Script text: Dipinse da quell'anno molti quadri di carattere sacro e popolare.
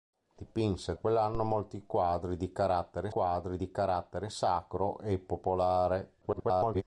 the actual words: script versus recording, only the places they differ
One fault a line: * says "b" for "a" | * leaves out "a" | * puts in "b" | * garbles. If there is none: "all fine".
* leaves out "da"
* puts in "quadri di carattere"
* garbles